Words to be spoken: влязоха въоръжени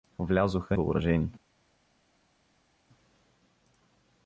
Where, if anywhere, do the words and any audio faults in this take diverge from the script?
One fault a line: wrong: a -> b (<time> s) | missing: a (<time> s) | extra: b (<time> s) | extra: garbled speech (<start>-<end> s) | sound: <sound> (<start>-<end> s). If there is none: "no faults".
no faults